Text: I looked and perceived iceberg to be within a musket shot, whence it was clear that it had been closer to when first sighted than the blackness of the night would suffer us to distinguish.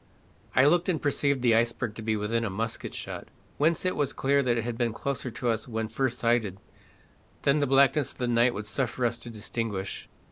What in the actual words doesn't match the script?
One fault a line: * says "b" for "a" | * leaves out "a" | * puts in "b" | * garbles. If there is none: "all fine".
* puts in "the"
* puts in "us"